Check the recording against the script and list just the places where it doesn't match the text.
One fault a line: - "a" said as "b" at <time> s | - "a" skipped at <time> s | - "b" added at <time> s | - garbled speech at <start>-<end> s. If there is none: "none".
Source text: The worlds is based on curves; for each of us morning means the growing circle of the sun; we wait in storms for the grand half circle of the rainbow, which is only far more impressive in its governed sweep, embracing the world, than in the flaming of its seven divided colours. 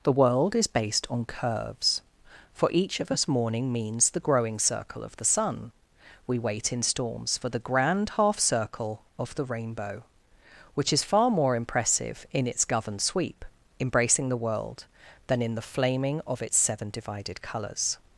- "worlds" said as "world" at 0.1 s
- "only" skipped at 11.0 s